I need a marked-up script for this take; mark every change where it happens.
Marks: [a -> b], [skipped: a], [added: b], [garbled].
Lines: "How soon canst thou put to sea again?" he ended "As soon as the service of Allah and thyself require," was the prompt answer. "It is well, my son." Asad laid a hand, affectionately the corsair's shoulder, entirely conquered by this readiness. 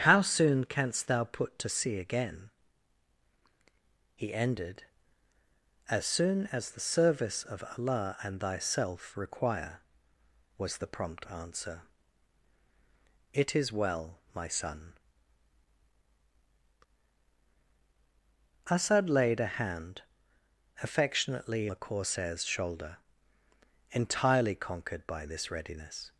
"How soon canst thou put to sea again?" he ended "As soon as the service of Allah and thyself require," was the prompt answer. "It is well, my son." Asad laid a hand, affectionately the corsair's shoulder, entirely conquered by this readiness.